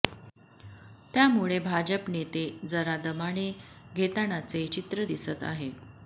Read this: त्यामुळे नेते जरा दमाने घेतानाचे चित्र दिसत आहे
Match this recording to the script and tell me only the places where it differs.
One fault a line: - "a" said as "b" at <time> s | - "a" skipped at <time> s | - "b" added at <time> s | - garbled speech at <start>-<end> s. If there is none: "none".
- "भाजप" added at 1.6 s